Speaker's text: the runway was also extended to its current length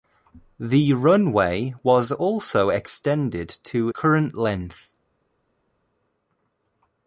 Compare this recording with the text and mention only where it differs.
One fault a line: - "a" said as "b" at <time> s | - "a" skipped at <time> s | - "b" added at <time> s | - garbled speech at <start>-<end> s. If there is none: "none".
- "its" skipped at 3.9 s